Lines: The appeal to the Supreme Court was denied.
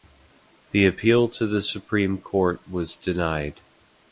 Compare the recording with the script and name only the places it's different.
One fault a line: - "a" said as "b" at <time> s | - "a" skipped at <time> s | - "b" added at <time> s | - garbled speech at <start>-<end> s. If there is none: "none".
none